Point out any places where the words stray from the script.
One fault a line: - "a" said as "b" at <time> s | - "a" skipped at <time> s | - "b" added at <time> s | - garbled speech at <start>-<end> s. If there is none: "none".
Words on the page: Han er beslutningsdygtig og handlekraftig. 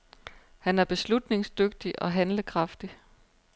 none